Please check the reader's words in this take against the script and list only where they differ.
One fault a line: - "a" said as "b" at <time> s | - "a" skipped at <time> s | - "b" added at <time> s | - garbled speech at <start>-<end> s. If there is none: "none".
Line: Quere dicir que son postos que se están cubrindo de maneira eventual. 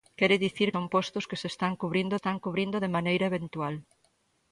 - "que" skipped at 0.7 s
- "están cubrindo" added at 2.2 s